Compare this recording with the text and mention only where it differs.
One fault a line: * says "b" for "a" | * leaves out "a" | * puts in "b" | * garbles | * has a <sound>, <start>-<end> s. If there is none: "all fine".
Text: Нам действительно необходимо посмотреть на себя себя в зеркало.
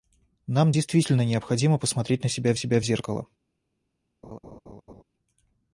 * has a laugh, 4.2-5.0 s